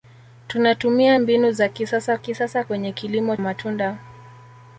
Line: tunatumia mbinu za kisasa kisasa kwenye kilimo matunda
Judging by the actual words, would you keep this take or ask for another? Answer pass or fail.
pass